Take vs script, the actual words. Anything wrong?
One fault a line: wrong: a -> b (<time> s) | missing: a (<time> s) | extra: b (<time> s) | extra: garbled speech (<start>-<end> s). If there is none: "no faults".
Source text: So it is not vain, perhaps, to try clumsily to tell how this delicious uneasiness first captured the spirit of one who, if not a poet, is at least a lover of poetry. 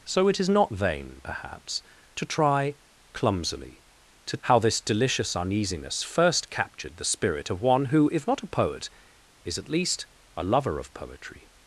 missing: tell (4.4 s)